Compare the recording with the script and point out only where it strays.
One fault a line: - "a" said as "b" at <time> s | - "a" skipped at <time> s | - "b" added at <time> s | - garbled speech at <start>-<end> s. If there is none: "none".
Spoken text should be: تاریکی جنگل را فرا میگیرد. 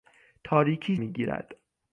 - "جنگل را فرا" skipped at 1.0 s